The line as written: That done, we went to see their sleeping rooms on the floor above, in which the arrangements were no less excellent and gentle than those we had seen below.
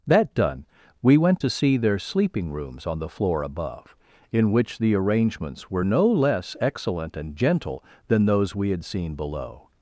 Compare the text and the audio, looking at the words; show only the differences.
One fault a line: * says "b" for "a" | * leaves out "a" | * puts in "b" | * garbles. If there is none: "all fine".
all fine